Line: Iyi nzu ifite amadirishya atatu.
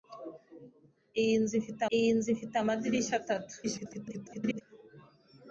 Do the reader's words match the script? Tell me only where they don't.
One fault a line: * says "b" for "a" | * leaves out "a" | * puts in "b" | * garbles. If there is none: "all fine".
* puts in "iyi nzu ifite"
* garbles